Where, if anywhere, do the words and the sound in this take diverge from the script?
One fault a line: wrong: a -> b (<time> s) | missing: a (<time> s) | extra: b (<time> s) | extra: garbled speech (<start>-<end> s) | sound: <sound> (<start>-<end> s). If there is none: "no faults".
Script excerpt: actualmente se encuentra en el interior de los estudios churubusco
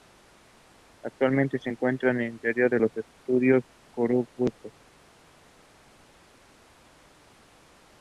no faults